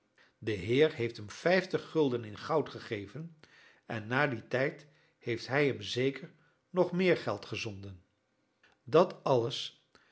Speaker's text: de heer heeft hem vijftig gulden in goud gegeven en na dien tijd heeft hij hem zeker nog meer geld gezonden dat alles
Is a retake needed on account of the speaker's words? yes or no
no